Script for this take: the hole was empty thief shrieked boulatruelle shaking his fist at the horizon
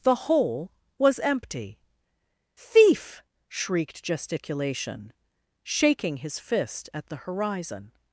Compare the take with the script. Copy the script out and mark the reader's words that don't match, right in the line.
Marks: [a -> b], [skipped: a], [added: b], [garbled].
the hole was empty thief shrieked [boulatruelle -> gesticulation] shaking his fist at the horizon